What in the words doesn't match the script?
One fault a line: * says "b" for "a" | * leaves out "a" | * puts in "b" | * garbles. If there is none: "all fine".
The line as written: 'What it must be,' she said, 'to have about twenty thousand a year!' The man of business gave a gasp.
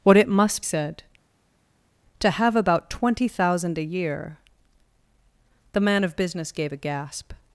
* leaves out "be she"